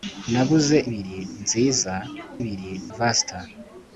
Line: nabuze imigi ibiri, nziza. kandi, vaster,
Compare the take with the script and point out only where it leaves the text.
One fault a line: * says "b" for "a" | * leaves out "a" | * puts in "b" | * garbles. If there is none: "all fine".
* leaves out "imigi"
* says "ibiri" for "kandi"